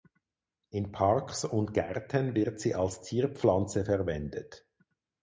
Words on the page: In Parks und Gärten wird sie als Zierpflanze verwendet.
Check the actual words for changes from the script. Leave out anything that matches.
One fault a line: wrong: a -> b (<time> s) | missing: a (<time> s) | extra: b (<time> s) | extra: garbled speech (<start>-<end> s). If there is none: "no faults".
no faults